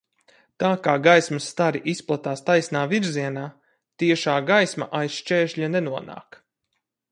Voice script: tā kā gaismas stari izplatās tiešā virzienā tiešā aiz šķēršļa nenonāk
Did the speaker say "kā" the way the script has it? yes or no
yes